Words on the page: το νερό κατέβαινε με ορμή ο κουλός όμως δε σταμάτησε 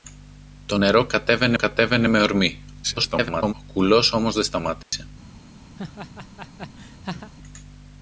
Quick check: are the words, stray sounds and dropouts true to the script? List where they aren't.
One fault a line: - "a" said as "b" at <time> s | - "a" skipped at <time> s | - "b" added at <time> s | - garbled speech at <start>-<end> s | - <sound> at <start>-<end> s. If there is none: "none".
- "κατέβαινε" added at 1.5 s
- garbled speech at 2.8-3.5 s
- dropout at 4.8-4.9 s
- laugh at 5.7-7.3 s